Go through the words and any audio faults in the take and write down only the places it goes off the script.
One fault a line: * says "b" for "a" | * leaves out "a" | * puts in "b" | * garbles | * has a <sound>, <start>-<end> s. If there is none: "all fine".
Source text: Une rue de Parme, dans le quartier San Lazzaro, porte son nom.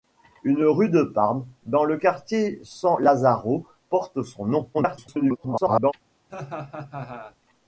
* garbles
* has a laugh, 6.3-7.4 s